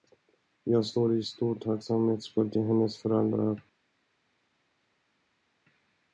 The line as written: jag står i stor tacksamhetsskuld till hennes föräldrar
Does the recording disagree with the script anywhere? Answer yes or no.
no